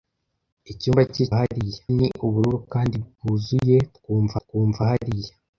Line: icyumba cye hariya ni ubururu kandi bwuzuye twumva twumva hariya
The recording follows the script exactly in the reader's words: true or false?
true